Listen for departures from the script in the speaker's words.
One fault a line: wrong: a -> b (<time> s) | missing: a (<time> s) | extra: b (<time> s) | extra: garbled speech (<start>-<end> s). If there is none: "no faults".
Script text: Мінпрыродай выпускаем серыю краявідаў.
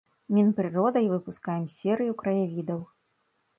no faults